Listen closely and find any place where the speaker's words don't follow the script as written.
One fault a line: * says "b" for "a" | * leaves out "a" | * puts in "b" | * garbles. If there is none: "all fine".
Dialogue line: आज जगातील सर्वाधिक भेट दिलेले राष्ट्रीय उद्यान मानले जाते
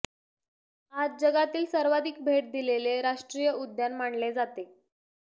all fine